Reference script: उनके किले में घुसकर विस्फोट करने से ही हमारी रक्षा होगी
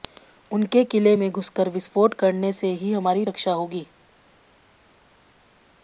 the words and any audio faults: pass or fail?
pass